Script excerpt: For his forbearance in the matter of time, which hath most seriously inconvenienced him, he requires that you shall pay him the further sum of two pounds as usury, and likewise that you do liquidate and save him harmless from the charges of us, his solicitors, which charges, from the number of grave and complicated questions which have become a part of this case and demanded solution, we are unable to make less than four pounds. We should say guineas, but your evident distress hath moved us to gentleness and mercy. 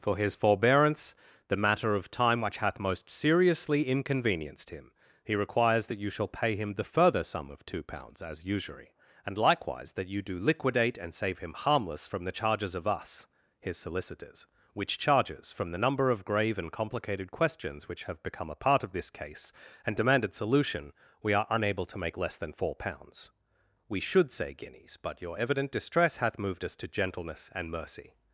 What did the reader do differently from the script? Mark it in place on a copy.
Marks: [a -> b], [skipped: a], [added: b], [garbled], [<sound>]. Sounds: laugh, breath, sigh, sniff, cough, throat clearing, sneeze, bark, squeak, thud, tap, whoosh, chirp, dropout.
For his forbearance [skipped: in] the matter of time, which hath most seriously inconvenienced him, he requires that you shall pay him the further sum of two pounds as usury, and likewise that you do liquidate and save him harmless from the charges of us, his solicitors, which charges, from the number of grave and complicated questions which have become a part of this case and demanded solution, we are unable to make less than four pounds. We should say guineas, but your evident distress hath moved us to gentleness and mercy.